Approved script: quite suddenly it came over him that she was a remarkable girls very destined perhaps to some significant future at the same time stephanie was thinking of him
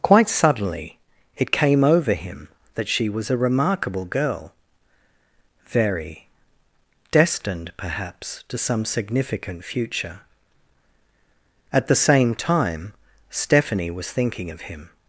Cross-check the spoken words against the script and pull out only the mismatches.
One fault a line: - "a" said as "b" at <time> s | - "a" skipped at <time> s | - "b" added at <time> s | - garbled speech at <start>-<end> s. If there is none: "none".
- "girls" said as "girl" at 4.0 s